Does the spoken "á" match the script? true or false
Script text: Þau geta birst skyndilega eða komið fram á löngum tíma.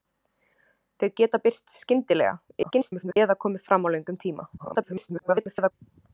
true